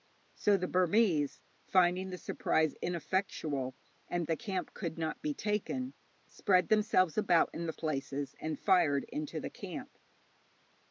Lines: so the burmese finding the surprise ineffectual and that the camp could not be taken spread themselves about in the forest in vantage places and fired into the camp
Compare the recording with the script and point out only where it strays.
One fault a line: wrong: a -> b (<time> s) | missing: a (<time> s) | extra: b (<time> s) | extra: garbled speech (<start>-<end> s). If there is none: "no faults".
missing: that (4.2 s)
missing: forest in vantage (7.7 s)